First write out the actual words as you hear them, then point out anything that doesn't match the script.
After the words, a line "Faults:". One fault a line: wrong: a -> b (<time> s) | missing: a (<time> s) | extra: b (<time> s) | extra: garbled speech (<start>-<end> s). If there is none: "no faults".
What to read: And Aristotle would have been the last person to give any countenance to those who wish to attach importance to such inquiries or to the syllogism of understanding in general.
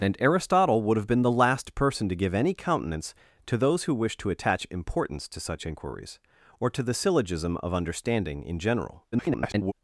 And Aristotle would have been the last person to give any countenance to those who wish to attach importance to such inquiries or to the syllogism of understanding in general. [garbled]
Faults:
extra: garbled speech (9.1-9.7 s)